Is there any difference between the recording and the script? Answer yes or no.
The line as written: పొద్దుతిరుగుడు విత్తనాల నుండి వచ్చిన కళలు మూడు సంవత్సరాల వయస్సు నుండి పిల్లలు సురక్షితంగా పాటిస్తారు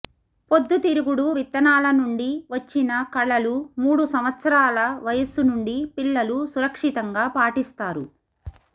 no